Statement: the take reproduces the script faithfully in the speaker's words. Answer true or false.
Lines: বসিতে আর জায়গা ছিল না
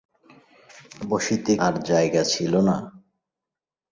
true